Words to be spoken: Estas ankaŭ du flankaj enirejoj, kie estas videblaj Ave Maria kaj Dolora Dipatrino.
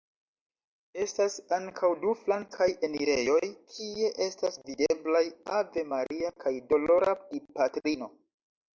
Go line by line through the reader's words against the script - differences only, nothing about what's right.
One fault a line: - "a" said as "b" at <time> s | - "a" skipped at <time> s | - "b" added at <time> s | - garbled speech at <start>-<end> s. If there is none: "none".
none